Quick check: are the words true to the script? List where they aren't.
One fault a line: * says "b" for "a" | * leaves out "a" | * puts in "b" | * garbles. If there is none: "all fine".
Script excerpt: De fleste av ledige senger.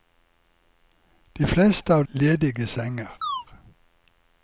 all fine